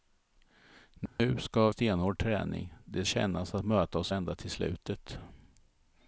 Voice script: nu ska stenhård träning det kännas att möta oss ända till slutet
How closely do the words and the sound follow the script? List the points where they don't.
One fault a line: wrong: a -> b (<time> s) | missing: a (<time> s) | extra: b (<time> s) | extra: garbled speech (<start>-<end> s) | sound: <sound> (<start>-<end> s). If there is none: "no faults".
sound: dropout (1.1-1.2 s)